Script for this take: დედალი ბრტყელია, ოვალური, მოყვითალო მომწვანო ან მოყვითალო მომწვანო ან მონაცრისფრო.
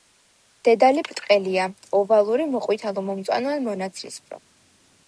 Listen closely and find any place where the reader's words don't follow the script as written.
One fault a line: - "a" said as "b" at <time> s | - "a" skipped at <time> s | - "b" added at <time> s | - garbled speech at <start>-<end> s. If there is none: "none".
- "მოყვითალო მომწვანო ან" skipped at 3.7 s